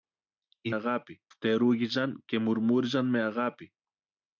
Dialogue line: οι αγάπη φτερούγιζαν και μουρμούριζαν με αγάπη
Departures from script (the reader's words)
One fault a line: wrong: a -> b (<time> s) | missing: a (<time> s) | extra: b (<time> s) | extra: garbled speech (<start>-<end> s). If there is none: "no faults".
no faults